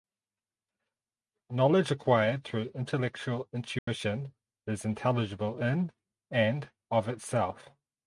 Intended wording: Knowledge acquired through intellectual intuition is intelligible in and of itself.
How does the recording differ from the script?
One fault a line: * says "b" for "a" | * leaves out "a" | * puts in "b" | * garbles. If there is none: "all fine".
all fine